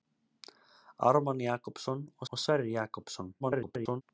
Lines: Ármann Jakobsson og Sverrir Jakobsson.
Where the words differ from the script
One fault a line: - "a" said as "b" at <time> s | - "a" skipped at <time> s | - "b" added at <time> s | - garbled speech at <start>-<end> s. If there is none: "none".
- "og" added at 2.3 s
- garbled speech at 3.4-4.0 s